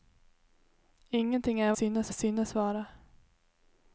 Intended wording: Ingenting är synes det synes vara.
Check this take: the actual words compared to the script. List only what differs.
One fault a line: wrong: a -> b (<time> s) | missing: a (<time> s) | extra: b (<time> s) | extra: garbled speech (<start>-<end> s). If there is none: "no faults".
no faults